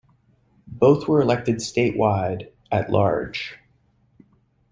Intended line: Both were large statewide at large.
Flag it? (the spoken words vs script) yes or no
yes